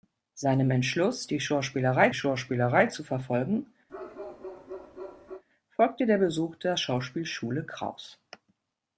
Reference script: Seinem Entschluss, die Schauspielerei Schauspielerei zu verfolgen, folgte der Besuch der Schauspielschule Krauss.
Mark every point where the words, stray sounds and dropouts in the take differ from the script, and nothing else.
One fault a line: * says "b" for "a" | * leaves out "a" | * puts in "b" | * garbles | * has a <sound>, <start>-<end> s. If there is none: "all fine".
* has a bark, 3.9-5.4 s